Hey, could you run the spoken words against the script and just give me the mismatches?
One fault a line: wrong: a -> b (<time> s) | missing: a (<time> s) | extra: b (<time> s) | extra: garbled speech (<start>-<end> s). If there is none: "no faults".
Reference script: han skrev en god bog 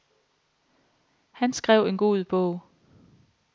no faults